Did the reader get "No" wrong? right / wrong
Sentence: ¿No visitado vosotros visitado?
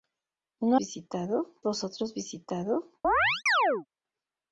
right